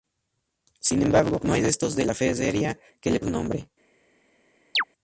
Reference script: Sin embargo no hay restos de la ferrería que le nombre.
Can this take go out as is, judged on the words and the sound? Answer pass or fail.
fail